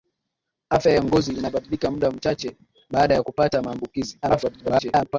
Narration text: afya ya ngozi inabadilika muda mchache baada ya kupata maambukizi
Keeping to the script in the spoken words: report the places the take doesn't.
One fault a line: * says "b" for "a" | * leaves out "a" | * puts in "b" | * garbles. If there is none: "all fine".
* garbles